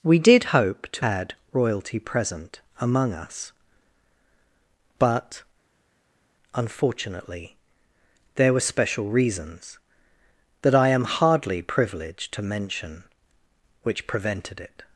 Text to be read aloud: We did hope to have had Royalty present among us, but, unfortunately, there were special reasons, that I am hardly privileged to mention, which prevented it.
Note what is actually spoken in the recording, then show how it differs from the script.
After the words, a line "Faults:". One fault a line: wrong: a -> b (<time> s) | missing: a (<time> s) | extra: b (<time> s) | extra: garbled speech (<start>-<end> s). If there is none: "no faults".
We did hope to had Royalty present among us, but, unfortunately, there were special reasons, that I am hardly privileged to mention, which prevented it.
Faults:
missing: have (1.1 s)